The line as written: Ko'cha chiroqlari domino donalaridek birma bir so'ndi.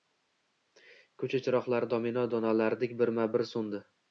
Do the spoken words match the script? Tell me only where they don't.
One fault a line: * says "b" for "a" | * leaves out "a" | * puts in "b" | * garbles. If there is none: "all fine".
all fine